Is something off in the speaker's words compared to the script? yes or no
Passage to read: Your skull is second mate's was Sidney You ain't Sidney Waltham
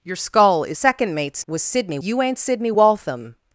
no